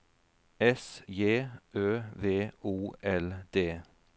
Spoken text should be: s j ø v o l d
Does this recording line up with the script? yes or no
yes